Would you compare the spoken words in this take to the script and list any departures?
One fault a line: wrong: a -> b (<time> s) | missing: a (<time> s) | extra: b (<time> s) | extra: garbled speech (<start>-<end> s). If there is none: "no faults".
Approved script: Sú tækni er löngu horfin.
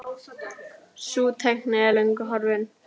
no faults